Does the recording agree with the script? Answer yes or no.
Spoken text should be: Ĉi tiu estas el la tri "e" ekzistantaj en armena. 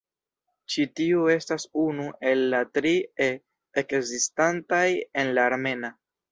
no